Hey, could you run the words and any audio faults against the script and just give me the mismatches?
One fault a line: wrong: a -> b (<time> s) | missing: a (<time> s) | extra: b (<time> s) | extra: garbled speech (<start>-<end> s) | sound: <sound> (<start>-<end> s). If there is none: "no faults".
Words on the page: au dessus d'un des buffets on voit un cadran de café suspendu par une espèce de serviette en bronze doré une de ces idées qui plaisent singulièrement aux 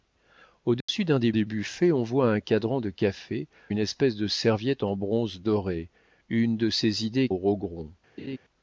sound: dropout (0.8-0.9 s)
extra: des (1.3 s)
missing: suspendu par (3.5 s)
missing: qui plaisent singulièrement (7.3 s)
sound: laugh (8.2-8.4 s)